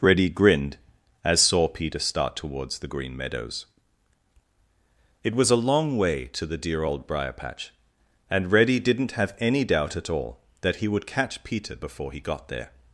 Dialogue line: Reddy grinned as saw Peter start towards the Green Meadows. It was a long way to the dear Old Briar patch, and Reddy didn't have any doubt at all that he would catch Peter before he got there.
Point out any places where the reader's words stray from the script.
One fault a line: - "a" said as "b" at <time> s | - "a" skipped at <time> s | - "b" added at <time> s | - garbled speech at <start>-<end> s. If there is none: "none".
none